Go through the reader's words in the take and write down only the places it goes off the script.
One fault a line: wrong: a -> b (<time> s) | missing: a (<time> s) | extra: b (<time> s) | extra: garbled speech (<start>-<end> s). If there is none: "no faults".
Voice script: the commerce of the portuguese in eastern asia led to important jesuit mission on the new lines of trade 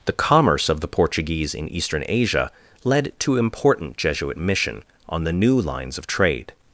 no faults